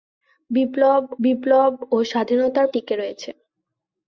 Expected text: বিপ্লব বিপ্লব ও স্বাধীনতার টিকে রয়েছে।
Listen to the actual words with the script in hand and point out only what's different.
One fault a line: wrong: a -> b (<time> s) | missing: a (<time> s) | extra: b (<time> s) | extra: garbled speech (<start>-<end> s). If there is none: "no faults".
no faults